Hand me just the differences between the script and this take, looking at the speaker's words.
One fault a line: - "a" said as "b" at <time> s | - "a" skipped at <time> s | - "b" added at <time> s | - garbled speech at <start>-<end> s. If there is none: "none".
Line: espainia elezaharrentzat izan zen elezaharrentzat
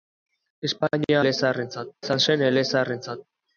none